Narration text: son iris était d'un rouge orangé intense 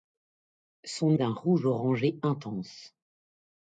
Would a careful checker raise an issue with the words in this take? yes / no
yes